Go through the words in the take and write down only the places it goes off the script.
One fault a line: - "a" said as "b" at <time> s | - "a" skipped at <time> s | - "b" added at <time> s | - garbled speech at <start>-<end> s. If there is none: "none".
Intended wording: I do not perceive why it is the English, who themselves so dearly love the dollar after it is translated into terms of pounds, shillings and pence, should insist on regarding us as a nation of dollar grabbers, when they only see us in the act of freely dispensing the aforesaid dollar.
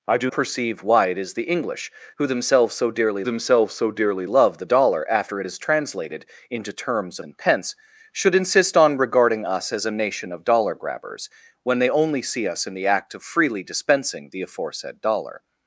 - "not" skipped at 0.3 s
- "themselves so dearly" added at 3.2 s
- "of pounds shillings" skipped at 7.2 s